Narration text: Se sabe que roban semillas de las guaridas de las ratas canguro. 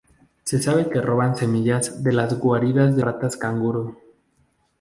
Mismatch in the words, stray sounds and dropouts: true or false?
true